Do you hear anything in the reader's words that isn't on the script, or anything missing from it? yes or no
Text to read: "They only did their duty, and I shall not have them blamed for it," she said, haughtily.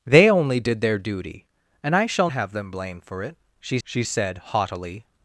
yes